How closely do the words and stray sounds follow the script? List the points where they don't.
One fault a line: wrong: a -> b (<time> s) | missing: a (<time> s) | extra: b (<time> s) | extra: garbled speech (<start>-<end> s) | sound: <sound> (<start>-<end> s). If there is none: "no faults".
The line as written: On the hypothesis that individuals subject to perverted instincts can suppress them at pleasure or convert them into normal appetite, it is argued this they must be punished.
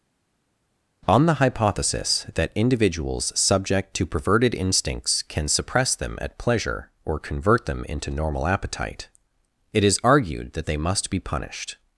wrong: this -> that (10.5 s)